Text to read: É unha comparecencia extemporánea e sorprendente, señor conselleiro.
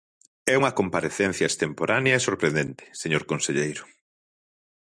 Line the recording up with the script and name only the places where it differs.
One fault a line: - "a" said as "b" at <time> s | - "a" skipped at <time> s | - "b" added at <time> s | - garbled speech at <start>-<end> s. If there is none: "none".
none